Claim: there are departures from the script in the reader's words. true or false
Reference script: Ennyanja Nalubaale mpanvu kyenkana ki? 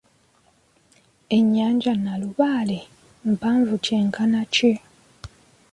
false